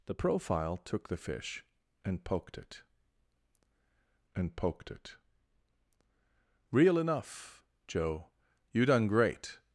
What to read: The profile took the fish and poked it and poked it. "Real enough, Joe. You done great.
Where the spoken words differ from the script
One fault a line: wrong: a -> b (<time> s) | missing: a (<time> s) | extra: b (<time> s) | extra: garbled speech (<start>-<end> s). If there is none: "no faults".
no faults